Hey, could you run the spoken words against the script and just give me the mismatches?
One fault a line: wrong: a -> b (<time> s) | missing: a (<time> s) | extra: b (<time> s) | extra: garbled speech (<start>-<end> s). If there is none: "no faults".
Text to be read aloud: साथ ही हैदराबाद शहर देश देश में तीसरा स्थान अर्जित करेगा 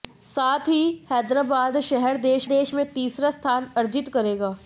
no faults